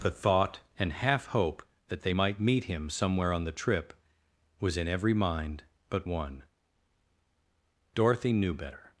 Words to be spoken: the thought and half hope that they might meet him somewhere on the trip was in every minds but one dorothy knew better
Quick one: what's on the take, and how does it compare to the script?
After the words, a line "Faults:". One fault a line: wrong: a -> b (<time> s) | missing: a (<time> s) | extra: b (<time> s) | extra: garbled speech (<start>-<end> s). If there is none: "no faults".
the thought and half hope that they might meet him somewhere on the trip was in every mind but one dorothy knew better
Faults:
wrong: minds -> mind (5.1 s)